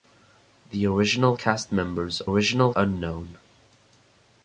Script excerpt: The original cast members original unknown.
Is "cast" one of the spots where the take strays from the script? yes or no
no